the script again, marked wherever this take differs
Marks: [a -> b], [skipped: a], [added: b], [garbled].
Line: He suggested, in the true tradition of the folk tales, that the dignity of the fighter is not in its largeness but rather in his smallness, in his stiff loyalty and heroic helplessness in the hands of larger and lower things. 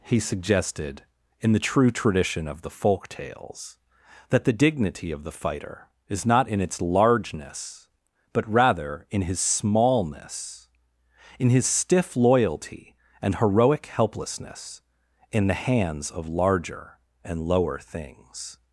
He suggested, in the true tradition of the folk tales, that the dignity of the fighter is not in its largeness but rather in his smallness, in his stiff loyalty and heroic helplessness in the hands of larger and lower things.